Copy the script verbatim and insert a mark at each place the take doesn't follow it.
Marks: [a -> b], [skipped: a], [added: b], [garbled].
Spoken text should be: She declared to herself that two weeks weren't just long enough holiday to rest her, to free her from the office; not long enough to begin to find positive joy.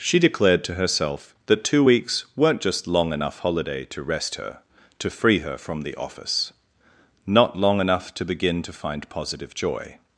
She declared to herself that two weeks weren't just long enough holiday to rest her, to free her from the office; not long enough to begin to find positive joy.